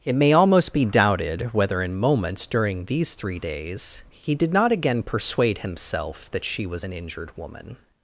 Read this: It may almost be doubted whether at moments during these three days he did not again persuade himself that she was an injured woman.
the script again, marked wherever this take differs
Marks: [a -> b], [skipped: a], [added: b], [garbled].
It may almost be doubted whether [at -> in] moments during these three days he did not again persuade himself that she was an injured woman.